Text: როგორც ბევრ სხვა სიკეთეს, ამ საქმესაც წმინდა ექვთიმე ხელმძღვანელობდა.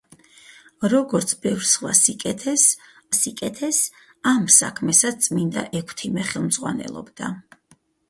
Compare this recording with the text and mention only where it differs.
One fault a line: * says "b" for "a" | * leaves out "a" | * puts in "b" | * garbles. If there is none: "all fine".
* puts in "სიკეთეს"